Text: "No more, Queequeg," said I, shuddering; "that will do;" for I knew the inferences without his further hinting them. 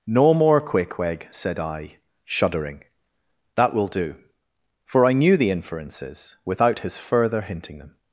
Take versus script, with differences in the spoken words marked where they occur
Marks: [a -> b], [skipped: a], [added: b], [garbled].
"No more, Queequeg," said I, shuddering; "that will do;" for I knew the inferences without his further hinting them.